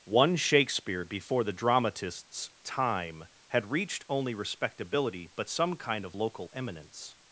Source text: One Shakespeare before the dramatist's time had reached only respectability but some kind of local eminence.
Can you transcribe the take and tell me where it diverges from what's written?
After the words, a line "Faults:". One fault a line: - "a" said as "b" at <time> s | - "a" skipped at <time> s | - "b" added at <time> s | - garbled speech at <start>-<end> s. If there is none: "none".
One Shakespeare before the dramatist's time had reached only respectability but some kind of local eminence.
Faults:
none